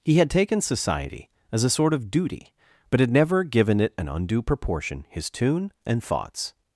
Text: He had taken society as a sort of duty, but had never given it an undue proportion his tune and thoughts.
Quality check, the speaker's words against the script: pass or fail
pass